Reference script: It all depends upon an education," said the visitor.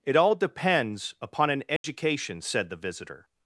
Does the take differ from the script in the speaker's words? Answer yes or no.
no